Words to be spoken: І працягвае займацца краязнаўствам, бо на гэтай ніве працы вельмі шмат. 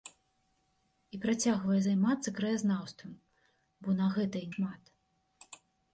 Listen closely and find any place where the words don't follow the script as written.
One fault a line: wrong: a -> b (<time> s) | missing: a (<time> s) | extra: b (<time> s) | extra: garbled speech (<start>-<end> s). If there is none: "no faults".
missing: ніве працы вельмі (4.4 s)